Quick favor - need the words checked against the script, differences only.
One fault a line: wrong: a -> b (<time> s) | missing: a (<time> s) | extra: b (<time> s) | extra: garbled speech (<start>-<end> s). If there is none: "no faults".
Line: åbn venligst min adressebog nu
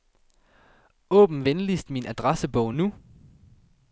no faults